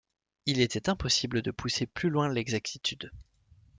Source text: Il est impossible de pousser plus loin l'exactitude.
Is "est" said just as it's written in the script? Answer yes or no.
no